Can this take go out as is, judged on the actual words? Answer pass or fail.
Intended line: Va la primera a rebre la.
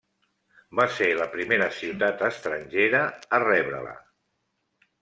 fail